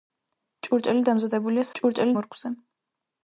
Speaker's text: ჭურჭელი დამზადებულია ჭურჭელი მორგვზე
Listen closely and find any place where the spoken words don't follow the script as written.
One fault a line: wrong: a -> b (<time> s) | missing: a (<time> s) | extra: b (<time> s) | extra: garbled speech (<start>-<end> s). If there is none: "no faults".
no faults